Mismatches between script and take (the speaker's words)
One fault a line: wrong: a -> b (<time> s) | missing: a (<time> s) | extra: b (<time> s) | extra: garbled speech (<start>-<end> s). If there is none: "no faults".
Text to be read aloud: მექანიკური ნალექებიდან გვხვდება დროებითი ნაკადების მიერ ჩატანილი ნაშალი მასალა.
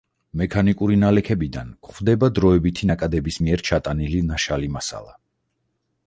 no faults